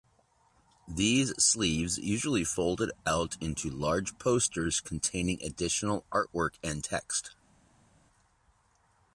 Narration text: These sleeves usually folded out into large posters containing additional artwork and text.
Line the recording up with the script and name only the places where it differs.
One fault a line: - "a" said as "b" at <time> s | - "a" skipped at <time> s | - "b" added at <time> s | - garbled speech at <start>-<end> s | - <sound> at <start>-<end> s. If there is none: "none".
none